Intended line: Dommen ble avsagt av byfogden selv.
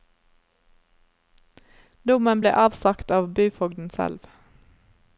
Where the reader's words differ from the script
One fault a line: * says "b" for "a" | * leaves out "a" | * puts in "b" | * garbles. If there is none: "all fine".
all fine